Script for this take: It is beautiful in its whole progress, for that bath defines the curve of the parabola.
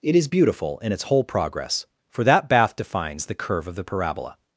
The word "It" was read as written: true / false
true